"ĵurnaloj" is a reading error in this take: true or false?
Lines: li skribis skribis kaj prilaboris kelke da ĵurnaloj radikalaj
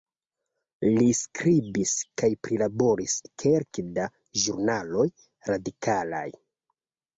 false